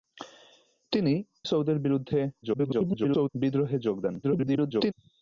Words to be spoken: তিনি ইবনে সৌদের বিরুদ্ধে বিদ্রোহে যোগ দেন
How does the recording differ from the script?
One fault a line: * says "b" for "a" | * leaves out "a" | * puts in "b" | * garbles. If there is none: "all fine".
* leaves out "ইবনে"
* garbles
* garbles